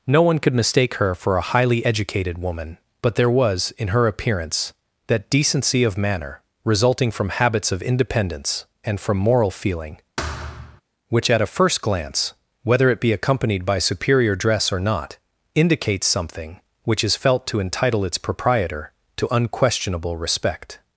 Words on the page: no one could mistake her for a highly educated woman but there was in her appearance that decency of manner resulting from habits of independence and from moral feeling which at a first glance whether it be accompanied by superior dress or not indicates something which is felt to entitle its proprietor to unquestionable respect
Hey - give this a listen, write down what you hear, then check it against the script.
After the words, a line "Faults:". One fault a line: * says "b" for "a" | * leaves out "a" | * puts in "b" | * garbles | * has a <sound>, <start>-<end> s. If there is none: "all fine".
no one could mistake her for a highly educated woman but there was in her appearance that decency of manner resulting from habits of independence and from moral feeling which at a first glance whether it be accompanied by superior dress or not indicates something which is felt to entitle its proprietor to unquestionable respect
Faults:
* has a thud, 10.2-10.8 s